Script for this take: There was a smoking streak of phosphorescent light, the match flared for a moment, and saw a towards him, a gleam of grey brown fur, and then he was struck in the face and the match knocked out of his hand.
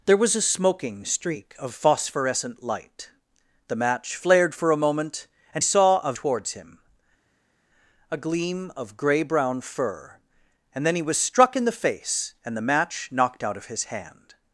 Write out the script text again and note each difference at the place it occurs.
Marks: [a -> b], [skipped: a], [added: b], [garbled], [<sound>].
There was a smoking streak of phosphorescent light, the match flared for a moment, and saw a towards him, a gleam of grey brown fur, and then he was struck in the face and the match knocked out of his hand.